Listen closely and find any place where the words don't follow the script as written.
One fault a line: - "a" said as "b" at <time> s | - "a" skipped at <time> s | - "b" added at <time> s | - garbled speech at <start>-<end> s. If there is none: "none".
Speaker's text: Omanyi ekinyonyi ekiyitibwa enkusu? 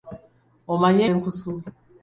- "ekinyonyi ekiyitibwa" skipped at 1.0 s